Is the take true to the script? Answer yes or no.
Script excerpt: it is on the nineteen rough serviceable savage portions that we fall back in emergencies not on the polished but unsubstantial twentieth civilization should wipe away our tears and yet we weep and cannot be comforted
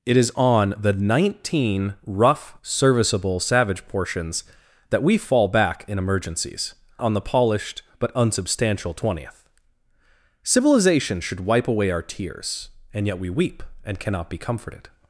no